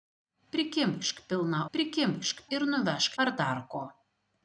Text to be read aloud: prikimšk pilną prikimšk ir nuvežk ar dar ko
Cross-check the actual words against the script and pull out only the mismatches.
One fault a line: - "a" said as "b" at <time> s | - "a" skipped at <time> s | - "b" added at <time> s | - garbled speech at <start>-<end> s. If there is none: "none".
none